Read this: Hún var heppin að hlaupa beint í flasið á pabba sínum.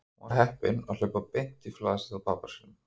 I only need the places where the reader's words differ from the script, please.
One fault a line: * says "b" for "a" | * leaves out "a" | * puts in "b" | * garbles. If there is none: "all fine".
all fine